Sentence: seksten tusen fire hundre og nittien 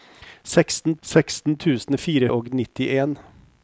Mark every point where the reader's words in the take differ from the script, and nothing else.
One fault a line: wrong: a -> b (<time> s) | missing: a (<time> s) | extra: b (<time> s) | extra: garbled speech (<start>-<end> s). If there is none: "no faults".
extra: seksten (1.0 s)
missing: hundre (2.3 s)